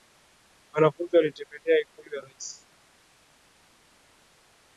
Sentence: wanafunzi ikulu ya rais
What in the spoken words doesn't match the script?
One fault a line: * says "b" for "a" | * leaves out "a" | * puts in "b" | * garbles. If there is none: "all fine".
* puts in "walitembelea"